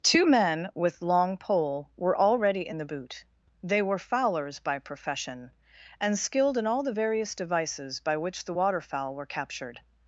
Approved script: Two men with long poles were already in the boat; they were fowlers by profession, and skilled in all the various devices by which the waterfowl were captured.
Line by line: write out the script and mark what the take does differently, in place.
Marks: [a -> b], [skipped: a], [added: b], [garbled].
Two men with long [poles -> pole] were already in the [boat; -> boot] they were fowlers by profession, and skilled in all the various devices by which the waterfowl were captured.